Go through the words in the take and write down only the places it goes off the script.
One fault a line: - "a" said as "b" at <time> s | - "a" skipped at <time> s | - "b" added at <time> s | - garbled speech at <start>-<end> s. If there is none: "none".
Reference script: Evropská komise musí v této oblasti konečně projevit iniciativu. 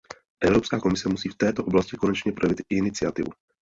none